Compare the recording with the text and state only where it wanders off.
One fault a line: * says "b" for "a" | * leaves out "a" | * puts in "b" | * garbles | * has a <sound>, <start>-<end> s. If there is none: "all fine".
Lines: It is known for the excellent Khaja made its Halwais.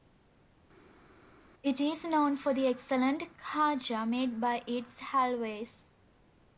* puts in "by"